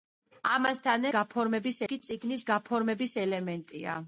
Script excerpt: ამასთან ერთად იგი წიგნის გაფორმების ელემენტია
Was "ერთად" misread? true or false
true